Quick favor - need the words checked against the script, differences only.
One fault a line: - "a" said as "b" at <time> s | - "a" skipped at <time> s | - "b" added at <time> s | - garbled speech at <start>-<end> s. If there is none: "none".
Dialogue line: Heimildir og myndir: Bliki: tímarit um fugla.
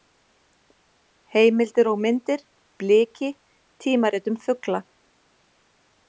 none